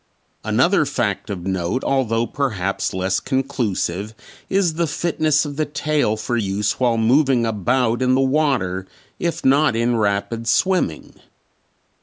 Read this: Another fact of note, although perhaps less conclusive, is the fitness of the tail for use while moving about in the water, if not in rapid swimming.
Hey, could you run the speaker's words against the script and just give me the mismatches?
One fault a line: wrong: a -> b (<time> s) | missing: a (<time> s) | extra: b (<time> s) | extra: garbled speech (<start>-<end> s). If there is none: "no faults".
no faults